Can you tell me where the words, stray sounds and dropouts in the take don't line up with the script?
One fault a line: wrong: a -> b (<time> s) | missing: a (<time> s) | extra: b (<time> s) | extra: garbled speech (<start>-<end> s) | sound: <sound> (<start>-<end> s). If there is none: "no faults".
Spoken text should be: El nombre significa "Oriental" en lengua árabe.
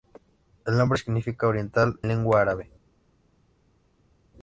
missing: en (2.0 s)